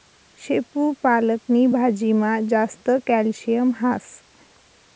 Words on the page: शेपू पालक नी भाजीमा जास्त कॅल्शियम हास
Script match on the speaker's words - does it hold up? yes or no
yes